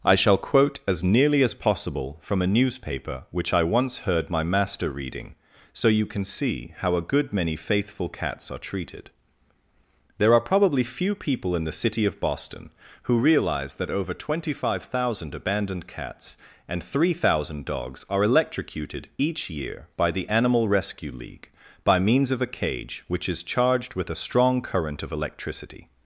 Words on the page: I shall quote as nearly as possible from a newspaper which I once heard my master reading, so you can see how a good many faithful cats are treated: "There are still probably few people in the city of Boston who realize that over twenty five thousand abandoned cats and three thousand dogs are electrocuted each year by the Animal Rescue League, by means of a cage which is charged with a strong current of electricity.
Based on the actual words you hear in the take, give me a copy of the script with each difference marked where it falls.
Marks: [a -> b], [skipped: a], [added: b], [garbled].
I shall quote as nearly as possible from a newspaper which I once heard my master reading, so you can see how a good many faithful cats are treated: "There are [skipped: still] probably few people in the city of Boston who realize that over twenty five thousand abandoned cats and three thousand dogs are electrocuted each year by the Animal Rescue League, by means of a cage which is charged with a strong current of electricity.